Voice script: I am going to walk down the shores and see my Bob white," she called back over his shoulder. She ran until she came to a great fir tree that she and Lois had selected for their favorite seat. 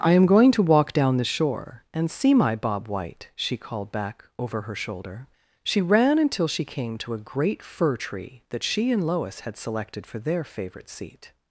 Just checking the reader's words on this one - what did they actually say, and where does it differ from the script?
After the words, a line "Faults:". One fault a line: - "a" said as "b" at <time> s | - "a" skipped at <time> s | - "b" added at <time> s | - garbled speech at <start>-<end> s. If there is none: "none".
I am going to walk down the shore and see my Bob white," she called back over her shoulder. She ran until she came to a great fir tree that she and Lois had selected for their favorite seat.
Faults:
- "shores" said as "shore" at 1.2 s
- "his" said as "her" at 4.6 s